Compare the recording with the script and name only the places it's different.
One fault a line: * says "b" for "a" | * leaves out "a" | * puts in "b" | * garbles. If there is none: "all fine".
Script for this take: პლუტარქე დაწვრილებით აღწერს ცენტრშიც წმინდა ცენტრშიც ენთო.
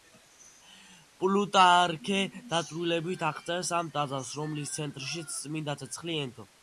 * puts in "ამ ტაძარს რომლის"
* says "ცეცხლი" for "ცენტრშიც"